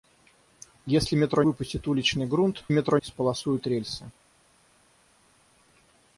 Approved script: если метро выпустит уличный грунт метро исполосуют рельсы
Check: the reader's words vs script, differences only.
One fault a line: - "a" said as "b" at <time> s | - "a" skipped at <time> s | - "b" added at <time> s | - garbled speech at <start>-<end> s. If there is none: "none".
none